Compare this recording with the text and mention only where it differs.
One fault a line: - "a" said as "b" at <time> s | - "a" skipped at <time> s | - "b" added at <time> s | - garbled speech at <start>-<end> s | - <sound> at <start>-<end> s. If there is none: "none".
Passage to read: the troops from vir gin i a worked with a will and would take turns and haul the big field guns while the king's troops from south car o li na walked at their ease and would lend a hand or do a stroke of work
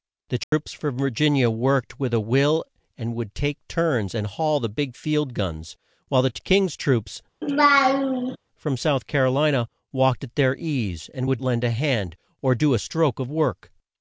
- dropout at 0.4-0.5 s
- laugh at 7.4-8.4 s